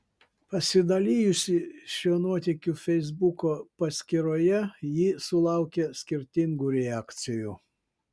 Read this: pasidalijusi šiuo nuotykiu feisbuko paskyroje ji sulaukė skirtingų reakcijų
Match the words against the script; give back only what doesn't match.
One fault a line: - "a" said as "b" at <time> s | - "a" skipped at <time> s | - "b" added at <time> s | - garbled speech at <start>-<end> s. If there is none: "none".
none